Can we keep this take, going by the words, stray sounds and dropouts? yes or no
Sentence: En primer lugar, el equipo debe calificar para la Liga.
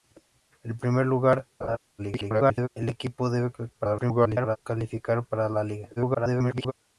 no